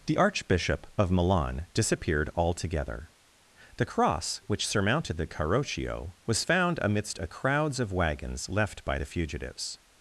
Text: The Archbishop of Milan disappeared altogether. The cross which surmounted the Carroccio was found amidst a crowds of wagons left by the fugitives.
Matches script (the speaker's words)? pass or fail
pass